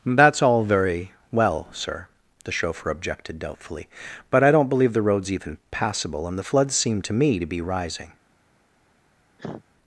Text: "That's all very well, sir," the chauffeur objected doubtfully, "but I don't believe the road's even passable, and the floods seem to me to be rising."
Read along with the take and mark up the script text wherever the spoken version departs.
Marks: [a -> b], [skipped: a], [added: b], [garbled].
"That's all very well, sir," the chauffeur objected doubtfully, "but I don't believe the road's even passable, and the floods seem to me to be rising."